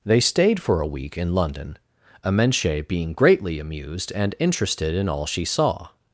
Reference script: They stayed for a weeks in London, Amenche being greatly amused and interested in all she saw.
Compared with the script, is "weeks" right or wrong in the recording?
wrong